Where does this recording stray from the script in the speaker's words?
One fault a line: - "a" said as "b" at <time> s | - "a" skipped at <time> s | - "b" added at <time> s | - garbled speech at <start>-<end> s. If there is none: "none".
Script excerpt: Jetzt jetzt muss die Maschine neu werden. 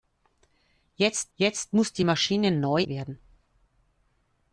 none